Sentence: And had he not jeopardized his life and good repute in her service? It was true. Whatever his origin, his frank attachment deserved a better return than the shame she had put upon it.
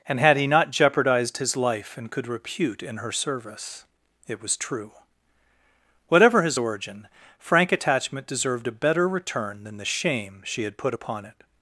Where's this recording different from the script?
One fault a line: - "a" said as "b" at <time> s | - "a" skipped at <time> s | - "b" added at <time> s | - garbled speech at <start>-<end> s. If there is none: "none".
- "good" said as "could" at 2.1 s
- "his" skipped at 7.1 s